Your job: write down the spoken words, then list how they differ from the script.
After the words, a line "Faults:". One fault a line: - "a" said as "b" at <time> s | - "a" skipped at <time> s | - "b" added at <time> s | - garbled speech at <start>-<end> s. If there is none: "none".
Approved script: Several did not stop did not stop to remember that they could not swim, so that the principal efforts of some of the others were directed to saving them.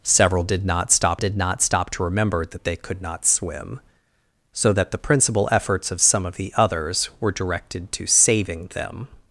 Several did not stop did not stop to remember that they could not swim, so that the principal efforts of some of the others were directed to saving them.
Faults:
none